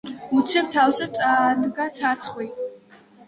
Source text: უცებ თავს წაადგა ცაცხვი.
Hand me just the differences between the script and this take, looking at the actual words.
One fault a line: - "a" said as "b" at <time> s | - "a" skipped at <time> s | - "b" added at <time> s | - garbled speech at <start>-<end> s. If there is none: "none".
none